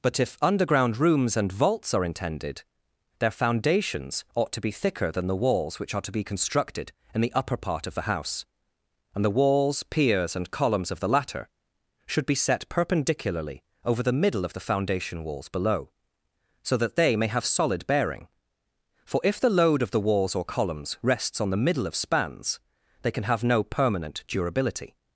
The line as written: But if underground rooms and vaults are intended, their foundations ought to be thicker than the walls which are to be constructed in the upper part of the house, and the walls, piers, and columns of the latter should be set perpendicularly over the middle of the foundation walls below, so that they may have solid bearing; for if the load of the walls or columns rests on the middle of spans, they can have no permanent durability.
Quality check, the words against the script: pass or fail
pass